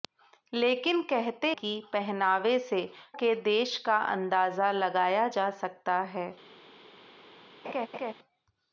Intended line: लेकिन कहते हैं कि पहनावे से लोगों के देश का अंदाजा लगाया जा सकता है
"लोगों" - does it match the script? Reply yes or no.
no